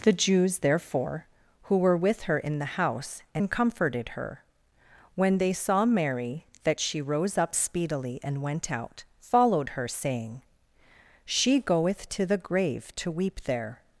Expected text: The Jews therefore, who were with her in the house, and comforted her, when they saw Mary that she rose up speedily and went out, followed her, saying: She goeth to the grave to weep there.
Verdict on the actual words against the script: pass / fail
pass